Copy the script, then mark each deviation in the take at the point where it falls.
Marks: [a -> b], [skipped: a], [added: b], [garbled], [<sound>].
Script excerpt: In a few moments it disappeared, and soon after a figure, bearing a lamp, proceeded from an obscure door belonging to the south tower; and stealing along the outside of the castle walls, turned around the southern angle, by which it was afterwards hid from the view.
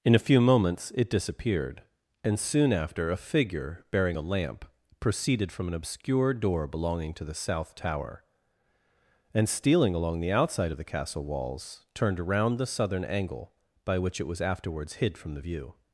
In a few moments it disappeared, and soon after a figure, bearing a lamp, proceeded from an obscure door belonging to the south tower; and stealing along the outside of the castle walls, turned around the southern angle, by which it was afterwards hid from the view.